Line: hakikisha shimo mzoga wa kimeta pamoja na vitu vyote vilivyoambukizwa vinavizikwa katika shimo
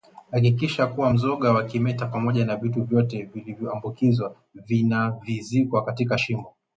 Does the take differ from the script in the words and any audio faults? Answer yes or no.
yes